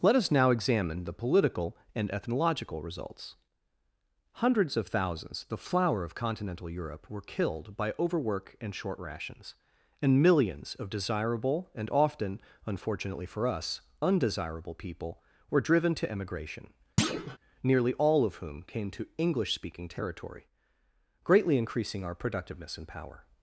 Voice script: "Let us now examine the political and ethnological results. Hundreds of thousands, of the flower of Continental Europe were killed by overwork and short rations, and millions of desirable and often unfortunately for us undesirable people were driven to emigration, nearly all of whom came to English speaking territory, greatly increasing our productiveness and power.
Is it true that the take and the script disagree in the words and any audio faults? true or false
true